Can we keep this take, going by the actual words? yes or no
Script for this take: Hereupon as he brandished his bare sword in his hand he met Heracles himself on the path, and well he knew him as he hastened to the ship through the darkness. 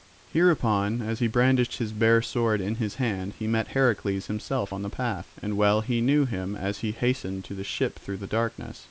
yes